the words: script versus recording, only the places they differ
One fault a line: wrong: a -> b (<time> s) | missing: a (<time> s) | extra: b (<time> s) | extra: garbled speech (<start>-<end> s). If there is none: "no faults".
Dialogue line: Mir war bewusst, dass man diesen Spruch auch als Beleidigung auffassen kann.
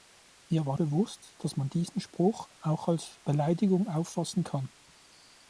no faults